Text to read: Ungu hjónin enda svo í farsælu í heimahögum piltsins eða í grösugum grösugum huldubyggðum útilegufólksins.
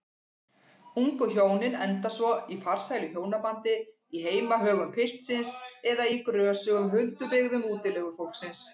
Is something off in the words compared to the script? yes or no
yes